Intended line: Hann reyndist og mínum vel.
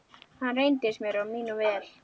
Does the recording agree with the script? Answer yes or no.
no